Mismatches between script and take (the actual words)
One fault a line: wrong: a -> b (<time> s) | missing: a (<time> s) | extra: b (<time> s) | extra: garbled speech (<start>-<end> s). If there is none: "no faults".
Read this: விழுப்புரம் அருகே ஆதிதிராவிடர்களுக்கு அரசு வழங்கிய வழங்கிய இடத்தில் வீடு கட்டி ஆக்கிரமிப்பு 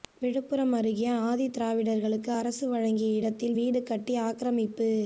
missing: வழங்கிய (3.2 s)